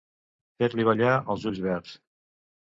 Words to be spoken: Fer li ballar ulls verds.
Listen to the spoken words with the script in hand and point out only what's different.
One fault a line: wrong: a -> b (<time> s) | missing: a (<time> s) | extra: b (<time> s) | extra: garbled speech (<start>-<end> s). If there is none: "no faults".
extra: els (1.4 s)